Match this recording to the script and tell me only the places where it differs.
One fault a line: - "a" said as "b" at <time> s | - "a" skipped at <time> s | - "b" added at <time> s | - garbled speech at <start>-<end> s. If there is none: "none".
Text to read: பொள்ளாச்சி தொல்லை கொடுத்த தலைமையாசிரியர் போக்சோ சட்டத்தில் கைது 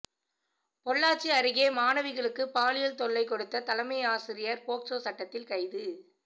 - "அருகே மாணவிகளுக்கு பாலியல்" added at 1.3 s